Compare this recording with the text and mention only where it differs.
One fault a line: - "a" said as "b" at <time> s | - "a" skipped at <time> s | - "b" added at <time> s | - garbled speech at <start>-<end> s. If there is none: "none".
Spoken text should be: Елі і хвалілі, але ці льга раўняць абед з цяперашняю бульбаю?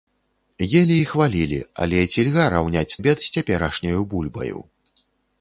none